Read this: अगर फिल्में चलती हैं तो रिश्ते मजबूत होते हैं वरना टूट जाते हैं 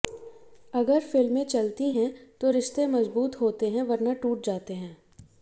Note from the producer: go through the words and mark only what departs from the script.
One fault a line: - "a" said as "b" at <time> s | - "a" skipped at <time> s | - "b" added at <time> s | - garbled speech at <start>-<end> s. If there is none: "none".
none